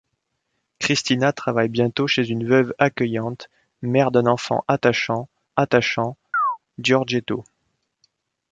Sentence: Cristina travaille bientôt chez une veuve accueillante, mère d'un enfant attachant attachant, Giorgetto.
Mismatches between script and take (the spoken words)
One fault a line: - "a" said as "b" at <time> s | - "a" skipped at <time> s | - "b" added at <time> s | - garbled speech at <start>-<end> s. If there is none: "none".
none